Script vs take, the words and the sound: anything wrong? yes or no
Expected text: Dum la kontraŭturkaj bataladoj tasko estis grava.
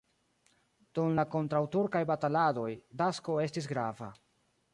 no